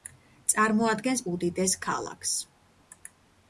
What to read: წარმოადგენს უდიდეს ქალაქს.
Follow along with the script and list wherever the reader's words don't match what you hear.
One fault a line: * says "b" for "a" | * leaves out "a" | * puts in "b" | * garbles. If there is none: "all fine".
all fine